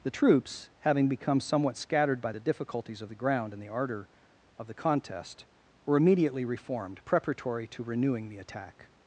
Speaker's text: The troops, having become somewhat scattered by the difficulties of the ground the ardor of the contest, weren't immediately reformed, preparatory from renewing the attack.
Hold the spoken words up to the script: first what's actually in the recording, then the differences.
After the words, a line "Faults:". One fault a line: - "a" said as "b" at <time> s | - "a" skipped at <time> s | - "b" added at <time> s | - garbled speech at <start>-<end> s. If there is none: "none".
The troops, having become somewhat scattered by the difficulties of the ground and the ardor of the contest, were immediately reformed, preparatory to renewing the attack.
Faults:
- "and" added at 3.5 s
- "weren't" said as "were" at 5.9 s
- "from" said as "to" at 7.7 s